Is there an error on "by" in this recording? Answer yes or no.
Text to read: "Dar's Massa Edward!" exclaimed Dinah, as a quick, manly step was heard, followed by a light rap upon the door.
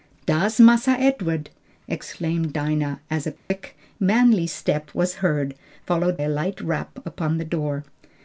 yes